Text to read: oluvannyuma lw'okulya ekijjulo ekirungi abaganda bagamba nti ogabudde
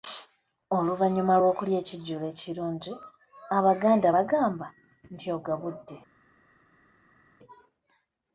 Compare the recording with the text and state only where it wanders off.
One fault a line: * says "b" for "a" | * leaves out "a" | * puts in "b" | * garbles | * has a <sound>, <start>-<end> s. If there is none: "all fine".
all fine